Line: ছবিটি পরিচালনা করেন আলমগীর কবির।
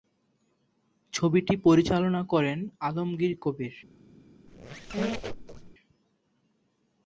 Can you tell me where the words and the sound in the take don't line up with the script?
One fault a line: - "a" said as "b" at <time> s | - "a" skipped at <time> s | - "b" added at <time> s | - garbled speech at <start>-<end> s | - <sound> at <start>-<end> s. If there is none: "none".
- squeak at 4.5-5.8 s